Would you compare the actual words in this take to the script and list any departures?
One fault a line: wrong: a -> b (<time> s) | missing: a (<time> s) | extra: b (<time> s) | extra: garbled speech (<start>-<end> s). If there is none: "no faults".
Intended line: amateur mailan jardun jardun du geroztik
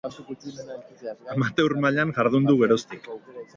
missing: jardun (2.5 s)